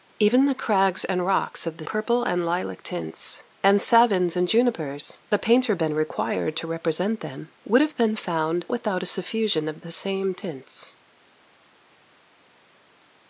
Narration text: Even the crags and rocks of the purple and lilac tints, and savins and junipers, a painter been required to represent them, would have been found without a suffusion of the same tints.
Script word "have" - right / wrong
right